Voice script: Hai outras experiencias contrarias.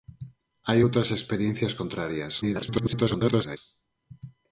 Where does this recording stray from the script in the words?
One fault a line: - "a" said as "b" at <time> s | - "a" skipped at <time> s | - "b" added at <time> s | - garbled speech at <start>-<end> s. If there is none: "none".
- garbled speech at 2.4-3.6 s